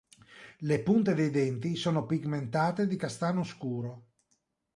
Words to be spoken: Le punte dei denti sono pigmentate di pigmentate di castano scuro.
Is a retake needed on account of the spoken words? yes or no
yes